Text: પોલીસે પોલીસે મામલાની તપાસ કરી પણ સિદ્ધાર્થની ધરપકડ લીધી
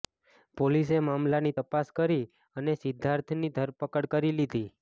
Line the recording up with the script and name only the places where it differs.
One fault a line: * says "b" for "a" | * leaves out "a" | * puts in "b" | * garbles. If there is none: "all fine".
* leaves out "પોલીસે"
* says "અને" for "પણ"
* puts in "કરી"